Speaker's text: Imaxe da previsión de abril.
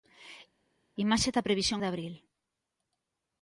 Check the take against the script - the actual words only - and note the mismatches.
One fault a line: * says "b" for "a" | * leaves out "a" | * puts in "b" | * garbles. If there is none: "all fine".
all fine